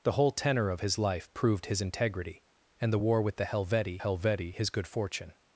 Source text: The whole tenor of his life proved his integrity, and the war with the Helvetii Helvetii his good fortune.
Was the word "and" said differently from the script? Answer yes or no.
no